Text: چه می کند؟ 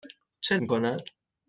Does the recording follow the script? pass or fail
pass